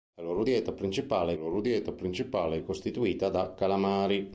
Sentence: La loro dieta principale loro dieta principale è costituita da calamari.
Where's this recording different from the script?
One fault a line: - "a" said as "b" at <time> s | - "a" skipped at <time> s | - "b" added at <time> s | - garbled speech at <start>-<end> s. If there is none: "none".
none